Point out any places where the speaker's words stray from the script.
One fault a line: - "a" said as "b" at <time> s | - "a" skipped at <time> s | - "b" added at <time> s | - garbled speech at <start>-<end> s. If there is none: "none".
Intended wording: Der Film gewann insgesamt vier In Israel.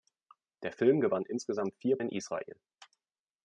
none